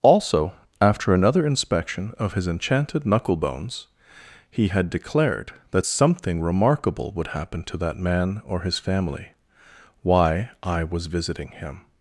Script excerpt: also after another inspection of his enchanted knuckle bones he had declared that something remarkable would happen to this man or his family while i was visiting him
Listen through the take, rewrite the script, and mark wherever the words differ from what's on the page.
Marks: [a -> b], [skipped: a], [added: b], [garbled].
also after another inspection of his enchanted knuckle bones he had declared that something remarkable would happen to [this -> that] man or his family [while -> why] i was visiting him